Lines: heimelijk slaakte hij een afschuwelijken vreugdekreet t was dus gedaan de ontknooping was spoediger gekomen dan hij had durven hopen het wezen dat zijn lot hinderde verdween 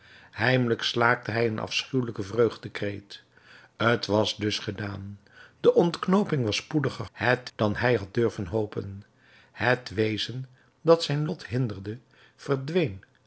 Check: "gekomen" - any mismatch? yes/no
yes